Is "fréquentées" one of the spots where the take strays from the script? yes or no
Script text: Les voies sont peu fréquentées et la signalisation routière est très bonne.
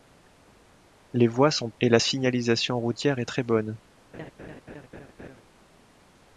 yes